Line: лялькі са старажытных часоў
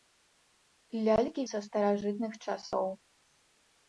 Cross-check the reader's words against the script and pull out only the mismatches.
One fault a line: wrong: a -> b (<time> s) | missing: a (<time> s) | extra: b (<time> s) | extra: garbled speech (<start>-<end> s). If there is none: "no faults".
no faults